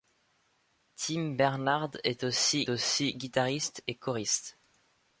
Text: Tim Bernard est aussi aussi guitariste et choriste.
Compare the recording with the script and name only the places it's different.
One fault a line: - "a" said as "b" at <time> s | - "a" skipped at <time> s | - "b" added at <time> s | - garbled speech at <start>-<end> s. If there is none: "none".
none